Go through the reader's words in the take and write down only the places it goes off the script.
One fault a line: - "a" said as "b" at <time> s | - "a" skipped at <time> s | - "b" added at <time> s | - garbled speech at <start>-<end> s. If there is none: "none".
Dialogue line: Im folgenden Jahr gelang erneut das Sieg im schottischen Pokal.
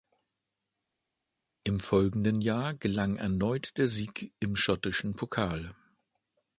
- "das" said as "der" at 3.8 s